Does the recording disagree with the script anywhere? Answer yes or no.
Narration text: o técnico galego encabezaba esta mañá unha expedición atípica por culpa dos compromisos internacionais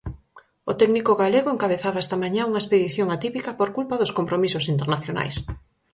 no